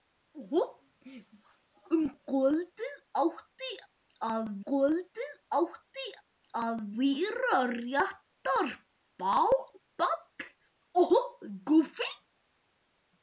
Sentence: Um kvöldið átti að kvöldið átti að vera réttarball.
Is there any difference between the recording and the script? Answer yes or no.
no